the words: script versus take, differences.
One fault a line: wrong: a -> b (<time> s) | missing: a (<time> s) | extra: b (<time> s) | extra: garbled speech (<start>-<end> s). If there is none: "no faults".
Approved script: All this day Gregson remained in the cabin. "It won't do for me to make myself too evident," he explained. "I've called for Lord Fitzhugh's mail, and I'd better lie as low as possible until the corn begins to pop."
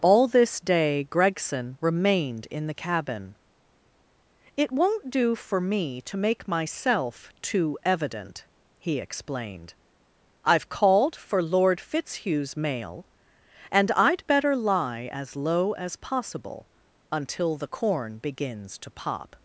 no faults